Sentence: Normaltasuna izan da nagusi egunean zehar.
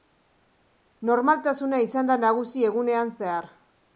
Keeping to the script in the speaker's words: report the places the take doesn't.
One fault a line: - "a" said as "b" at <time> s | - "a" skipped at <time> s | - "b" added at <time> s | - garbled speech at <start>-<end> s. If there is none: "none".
none